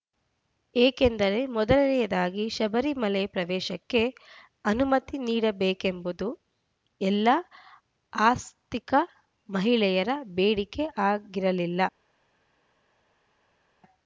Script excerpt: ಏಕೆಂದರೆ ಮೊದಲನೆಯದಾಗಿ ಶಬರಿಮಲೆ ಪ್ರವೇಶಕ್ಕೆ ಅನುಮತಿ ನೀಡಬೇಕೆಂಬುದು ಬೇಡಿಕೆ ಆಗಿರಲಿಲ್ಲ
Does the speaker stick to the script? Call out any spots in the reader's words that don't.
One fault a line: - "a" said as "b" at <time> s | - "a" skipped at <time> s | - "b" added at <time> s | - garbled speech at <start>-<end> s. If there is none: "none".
- "ಎಲ್ಲ ಆಸ್ತಿಕ ಮಹಿಳೆಯರ" added at 7.0 s